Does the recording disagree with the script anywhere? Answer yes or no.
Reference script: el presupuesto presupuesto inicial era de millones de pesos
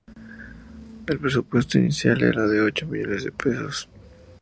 yes